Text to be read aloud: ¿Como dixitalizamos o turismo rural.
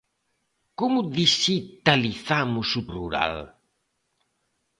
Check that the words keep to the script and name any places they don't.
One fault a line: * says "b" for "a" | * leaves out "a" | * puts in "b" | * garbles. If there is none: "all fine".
* leaves out "turismo"